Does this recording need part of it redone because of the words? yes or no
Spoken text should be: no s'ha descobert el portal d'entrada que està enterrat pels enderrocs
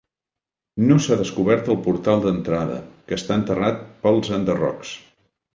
no